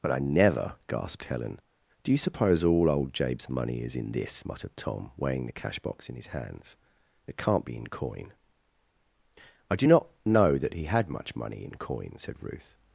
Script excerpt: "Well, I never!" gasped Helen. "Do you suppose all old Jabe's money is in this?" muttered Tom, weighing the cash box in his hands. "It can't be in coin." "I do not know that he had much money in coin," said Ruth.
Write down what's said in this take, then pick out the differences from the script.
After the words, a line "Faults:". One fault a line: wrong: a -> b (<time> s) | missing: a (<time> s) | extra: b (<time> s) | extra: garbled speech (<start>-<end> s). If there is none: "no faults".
"But, I never!" gasped Helen. "Do you suppose all old Jabe's money is in this?" muttered Tom, weighing the cash box in his hands. "It can't be in coin." "I do not know that he had much money in coin," said Ruth.
Faults:
wrong: Well -> But (0.0 s)